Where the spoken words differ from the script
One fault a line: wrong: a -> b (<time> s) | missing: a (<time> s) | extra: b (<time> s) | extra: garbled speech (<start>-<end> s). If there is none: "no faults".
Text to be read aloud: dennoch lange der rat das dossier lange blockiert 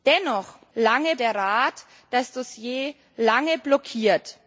no faults